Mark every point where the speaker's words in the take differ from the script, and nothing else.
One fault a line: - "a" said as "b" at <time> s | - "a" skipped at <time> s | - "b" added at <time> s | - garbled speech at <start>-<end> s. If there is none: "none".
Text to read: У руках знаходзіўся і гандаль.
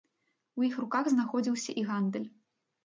- "іх" added at 0.7 s